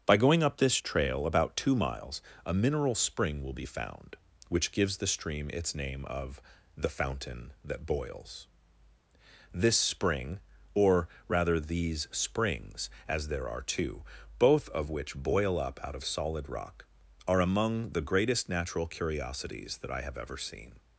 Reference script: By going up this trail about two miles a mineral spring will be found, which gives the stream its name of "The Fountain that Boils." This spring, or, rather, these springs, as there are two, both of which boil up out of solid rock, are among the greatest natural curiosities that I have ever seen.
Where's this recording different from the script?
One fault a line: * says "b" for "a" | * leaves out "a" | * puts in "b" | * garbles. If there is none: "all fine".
all fine